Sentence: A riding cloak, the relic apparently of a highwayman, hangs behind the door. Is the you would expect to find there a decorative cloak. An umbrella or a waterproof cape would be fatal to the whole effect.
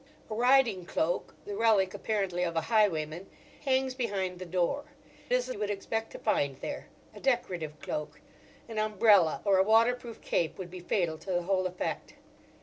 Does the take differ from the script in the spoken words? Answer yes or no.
no